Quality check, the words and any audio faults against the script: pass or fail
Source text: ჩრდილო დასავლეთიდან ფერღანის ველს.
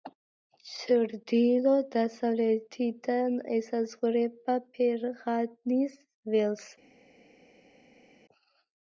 fail